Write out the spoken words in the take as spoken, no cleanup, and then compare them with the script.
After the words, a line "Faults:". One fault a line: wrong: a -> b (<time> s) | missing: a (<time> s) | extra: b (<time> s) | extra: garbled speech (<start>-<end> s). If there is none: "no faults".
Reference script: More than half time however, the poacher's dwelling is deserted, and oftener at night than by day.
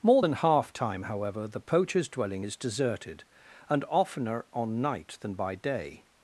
More than half time however, the poacher's dwelling is deserted, and oftener on night than by day.
Faults:
wrong: at -> on (4.5 s)